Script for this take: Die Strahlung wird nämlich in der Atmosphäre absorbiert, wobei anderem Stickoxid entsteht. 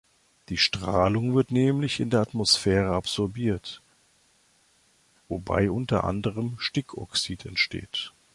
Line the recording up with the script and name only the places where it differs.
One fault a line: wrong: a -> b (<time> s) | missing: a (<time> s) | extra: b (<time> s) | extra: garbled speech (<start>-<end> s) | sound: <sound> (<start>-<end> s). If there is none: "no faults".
extra: unter (5.7 s)